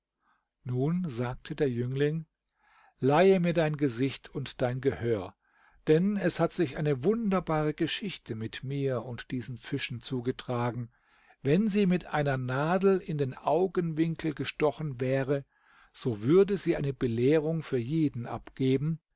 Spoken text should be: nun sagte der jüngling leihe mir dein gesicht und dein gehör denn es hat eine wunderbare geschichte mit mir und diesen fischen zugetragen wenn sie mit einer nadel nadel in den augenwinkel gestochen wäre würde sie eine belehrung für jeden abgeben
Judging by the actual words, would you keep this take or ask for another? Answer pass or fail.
fail